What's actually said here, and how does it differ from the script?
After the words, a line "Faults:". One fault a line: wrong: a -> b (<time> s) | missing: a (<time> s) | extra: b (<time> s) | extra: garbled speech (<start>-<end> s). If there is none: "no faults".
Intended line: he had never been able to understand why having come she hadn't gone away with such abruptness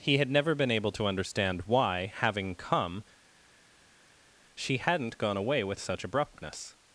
he had never been able to understand why having come she hadn't gone away with such abruptness
Faults:
no faults